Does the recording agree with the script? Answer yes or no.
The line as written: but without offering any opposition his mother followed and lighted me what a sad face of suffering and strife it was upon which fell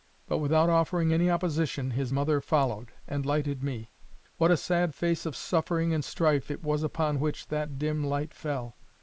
no